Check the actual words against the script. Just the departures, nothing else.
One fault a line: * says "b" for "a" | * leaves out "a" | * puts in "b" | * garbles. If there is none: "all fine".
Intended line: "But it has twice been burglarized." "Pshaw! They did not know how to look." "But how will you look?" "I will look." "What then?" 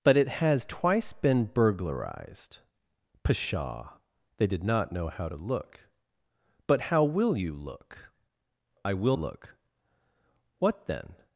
all fine